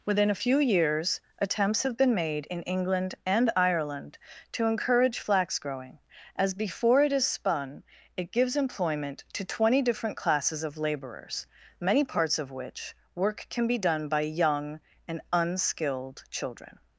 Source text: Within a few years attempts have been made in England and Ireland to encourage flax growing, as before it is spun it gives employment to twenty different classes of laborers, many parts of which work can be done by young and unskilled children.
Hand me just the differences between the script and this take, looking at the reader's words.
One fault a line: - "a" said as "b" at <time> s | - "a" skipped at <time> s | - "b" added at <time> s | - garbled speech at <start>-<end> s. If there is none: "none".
none